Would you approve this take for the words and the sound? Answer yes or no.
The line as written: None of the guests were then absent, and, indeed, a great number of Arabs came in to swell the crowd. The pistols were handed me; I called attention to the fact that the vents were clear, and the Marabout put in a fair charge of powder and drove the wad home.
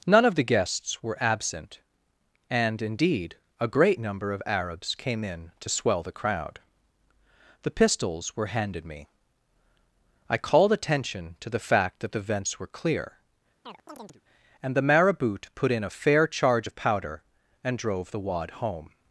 no